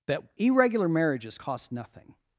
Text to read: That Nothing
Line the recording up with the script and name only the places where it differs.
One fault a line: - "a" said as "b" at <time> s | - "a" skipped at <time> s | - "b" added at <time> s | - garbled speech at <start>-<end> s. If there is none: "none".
- "Irregular Marriages cost" added at 0.4 s